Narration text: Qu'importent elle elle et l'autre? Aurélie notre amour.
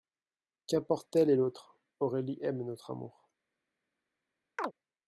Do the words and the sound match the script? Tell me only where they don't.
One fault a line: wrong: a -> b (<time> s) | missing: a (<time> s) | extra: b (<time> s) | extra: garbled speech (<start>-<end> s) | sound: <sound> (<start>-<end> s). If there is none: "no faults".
missing: elle (1.3 s)
extra: aime (2.4 s)
sound: chirp (4.6-4.7 s)